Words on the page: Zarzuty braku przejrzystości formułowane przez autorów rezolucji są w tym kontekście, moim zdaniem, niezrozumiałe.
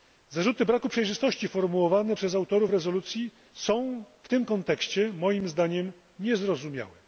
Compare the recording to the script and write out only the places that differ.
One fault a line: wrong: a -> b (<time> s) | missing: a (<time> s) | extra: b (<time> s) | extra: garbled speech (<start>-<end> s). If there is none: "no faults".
no faults